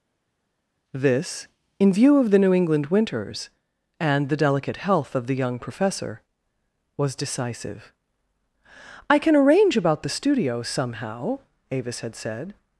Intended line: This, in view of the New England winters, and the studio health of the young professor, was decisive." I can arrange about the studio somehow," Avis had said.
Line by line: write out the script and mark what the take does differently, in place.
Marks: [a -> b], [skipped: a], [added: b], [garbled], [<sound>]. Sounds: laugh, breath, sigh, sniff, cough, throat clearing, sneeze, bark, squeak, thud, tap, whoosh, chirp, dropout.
This, in view of the New England winters, and the [studio -> delicate] health of the young professor, was decisive." I can arrange about the studio somehow," Avis had said.